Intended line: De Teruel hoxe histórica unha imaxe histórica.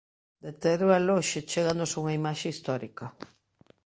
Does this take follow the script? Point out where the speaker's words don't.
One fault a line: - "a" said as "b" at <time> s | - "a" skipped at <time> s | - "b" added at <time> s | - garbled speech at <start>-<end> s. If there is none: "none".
- "histórica" said as "chéganos" at 1.5 s